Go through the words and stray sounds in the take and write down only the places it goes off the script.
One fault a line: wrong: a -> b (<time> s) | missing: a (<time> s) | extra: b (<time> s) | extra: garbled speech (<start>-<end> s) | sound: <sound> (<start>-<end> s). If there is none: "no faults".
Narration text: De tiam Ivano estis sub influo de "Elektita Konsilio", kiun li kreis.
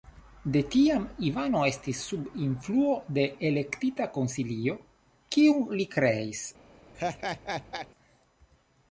sound: laugh (6.9-7.9 s)